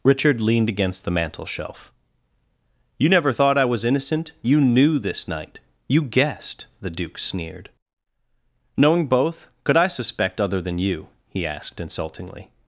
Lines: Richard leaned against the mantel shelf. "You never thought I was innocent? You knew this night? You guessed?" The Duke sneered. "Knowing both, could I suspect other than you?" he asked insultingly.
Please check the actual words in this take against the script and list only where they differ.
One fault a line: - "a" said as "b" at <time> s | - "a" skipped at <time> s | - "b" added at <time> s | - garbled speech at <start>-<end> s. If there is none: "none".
none